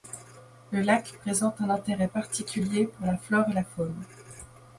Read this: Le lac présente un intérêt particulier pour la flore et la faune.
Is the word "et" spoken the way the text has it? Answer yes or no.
yes